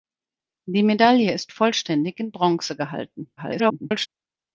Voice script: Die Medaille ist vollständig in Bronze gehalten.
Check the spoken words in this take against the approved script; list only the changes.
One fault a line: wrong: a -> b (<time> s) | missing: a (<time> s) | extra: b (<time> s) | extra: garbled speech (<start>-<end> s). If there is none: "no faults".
extra: garbled speech (3.4-4.1 s)